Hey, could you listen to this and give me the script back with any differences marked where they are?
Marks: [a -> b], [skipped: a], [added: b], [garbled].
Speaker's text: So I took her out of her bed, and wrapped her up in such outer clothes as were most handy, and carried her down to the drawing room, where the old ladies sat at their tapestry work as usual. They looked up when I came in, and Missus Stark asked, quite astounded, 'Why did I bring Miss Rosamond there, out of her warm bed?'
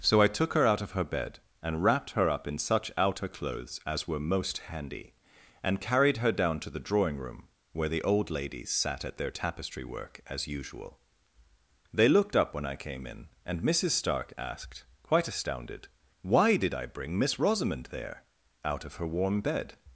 So I took her out of her bed, and wrapped her up in such outer clothes as were most handy, and carried her down to the drawing room, where the old ladies sat at their tapestry work as usual. They looked up when I came in, and Missus Stark asked, quite astounded, 'Why did I bring Miss Rosamond there, out of her warm bed?'